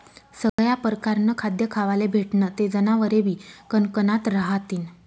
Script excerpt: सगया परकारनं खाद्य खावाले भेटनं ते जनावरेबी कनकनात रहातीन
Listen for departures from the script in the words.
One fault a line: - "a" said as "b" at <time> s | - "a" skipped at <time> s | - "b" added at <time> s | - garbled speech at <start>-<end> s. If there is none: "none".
none